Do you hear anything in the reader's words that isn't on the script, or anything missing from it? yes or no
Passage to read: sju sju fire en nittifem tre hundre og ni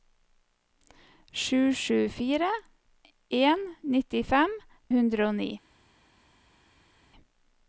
yes